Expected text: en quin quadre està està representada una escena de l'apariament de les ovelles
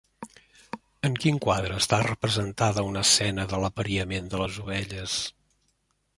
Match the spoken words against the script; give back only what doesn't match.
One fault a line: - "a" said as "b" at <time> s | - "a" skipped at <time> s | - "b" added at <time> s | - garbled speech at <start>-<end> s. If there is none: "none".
- "està" skipped at 2.0 s